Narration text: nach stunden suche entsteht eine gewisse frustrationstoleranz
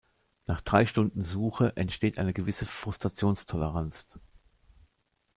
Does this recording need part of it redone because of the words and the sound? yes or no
yes